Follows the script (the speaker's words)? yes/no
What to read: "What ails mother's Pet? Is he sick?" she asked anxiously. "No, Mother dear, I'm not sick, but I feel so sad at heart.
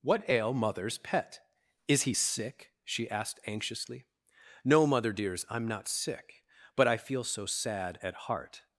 no